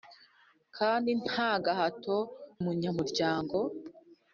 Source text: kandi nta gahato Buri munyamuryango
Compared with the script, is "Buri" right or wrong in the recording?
wrong